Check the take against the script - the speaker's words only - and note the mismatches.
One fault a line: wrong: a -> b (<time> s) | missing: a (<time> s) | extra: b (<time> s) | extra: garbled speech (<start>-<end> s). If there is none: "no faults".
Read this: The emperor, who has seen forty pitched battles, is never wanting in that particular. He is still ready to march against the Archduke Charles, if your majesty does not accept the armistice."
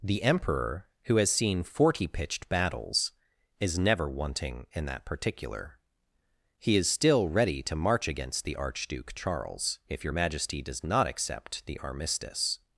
no faults